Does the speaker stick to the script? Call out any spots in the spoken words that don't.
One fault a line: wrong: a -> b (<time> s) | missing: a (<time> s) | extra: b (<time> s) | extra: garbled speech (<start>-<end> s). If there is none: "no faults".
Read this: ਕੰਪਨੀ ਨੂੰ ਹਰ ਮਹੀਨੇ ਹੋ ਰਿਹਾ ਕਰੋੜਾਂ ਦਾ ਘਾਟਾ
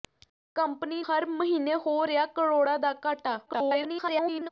missing: ਨੂੰ (1.0 s)
extra: garbled speech (3.5-4.5 s)